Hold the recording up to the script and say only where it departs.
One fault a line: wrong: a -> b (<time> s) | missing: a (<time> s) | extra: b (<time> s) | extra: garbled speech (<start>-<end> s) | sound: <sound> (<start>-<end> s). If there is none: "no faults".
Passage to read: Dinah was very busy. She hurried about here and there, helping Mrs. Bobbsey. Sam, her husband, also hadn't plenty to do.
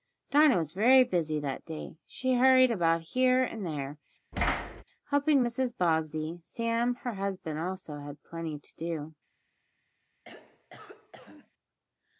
extra: that day (1.4 s)
sound: thud (4.3-4.8 s)
wrong: hadn't -> had (8.0 s)
sound: throat clearing (10.2-11.5 s)